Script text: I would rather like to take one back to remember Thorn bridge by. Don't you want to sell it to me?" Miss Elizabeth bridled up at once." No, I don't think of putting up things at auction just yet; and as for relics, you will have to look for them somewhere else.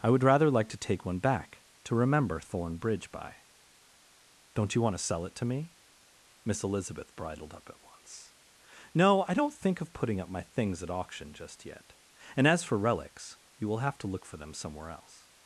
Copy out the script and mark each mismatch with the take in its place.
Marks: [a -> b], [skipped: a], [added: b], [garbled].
I would rather like to take one back to remember Thorn bridge by. Don't you want to sell it to me?" Miss Elizabeth bridled up at once." No, I don't think of putting up [added: my] things at auction just yet; and as for relics, you will have to look for them somewhere else.